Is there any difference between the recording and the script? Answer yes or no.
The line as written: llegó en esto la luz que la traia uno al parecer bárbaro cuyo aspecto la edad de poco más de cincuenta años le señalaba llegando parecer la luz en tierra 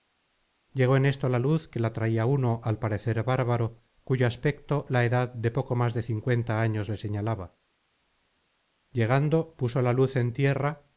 yes